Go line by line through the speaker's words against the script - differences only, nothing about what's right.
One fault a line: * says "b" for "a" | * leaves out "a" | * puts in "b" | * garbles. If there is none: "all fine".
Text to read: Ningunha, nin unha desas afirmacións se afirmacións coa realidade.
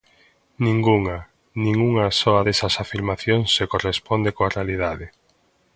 * puts in "soa"
* says "corresponde" for "afirmacións"